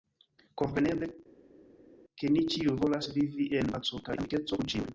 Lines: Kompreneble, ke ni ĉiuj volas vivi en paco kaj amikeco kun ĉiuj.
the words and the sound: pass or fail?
pass